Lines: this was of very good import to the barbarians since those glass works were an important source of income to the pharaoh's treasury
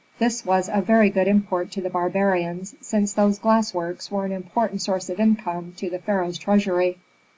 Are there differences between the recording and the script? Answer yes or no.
no